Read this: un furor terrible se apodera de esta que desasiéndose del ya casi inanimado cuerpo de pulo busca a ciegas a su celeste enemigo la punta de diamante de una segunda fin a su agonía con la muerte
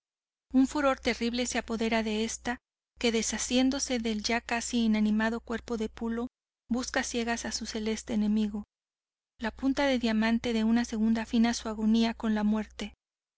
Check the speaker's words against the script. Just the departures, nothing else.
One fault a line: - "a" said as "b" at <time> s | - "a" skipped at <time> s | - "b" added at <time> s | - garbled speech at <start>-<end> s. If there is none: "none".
none